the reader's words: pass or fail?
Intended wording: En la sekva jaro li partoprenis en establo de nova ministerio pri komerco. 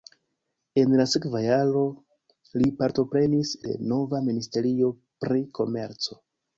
fail